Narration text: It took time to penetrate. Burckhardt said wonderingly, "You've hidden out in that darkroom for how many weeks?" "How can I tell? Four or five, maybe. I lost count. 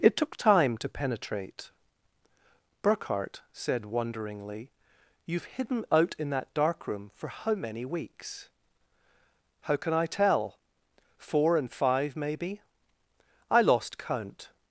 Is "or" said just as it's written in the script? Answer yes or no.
no